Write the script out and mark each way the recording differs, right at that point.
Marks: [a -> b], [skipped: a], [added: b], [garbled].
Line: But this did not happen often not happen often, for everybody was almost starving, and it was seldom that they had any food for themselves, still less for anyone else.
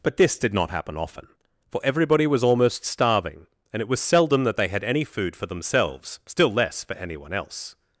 But this did not happen often [skipped: not happen often,] for everybody was almost starving, and it was seldom that they had any food for themselves, still less for anyone else.